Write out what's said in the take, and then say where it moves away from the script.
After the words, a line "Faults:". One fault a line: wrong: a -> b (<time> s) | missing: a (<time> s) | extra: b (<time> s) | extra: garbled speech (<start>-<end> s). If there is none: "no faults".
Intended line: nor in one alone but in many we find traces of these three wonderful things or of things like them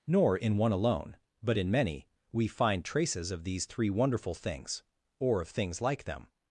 nor in one alone but in many we find traces of these three wonderful things or of things like them
Faults:
no faults